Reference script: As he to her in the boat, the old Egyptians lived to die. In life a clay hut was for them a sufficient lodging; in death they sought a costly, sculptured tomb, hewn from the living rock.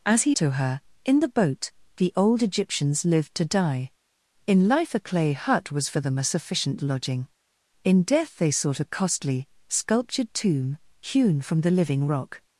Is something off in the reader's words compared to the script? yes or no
no